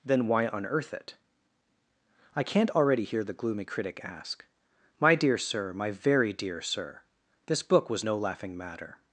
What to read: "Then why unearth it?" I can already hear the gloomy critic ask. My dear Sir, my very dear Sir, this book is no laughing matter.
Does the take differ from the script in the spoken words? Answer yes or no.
yes